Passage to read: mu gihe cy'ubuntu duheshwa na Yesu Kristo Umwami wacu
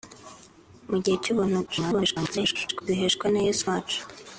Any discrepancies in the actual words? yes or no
yes